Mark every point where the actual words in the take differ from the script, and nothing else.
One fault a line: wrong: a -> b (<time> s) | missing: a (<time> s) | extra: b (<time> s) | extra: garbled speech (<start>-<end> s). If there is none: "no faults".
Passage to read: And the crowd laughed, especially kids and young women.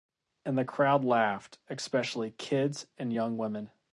no faults